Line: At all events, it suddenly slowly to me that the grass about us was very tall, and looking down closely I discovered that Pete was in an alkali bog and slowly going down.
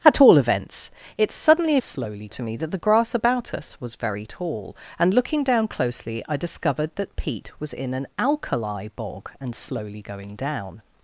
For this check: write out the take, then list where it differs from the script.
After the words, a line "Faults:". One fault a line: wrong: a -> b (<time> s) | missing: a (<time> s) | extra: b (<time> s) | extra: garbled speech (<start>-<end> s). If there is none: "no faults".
At all events, it suddenly slowly to me that the grass about us was very tall, and looking down closely I discovered that Pete was in an alkali bog and slowly going down.
Faults:
no faults